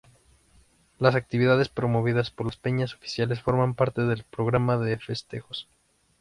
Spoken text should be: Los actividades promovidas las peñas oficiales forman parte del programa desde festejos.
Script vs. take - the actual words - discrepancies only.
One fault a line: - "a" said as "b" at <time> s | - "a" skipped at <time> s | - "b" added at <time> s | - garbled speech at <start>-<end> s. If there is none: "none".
- "Los" said as "Las" at 1.0 s
- "por" added at 2.3 s
- "desde" said as "de" at 4.8 s